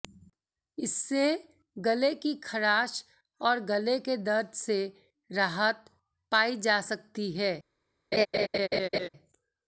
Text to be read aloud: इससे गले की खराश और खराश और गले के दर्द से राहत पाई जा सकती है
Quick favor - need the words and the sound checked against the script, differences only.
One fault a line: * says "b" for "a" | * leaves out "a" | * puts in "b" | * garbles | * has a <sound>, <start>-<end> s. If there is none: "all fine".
* leaves out "खराश और"
* has a laugh, 8.1-9.1 s